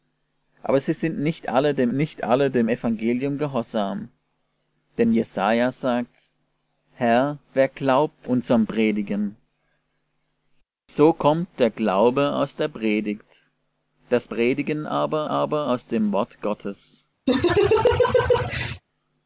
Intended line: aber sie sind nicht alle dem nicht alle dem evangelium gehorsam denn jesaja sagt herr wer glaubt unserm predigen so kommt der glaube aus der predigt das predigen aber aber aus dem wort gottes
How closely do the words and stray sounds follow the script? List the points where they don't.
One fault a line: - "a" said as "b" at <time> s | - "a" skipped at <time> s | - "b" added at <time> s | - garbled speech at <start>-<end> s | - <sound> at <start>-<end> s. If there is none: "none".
- laugh at 17.3-18.8 s